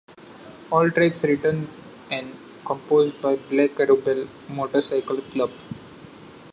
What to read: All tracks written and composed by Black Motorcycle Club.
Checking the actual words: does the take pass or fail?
fail